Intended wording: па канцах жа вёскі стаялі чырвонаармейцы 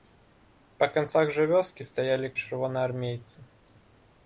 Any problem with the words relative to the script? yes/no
no